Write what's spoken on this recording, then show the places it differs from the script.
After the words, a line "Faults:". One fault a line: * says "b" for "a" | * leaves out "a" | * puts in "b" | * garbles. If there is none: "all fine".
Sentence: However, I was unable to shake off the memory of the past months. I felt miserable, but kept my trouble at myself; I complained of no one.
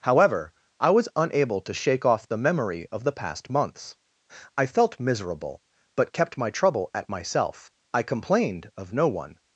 However, I was unable to shake off the memory of the past months. I felt miserable, but kept my trouble at myself; I complained of no one.
Faults:
all fine